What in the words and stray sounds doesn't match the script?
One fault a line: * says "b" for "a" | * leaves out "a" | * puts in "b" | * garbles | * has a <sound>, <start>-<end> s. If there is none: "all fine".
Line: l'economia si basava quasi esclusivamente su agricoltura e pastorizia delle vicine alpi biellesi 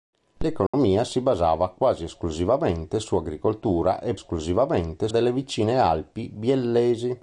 * has a dropout, 0.7-0.7 s
* says "esclusivamente" for "pastorizia"